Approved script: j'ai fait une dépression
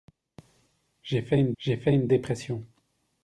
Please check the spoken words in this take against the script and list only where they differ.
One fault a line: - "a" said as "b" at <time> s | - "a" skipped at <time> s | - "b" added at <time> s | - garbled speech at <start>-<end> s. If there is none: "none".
- "j'ai fait une" added at 1.6 s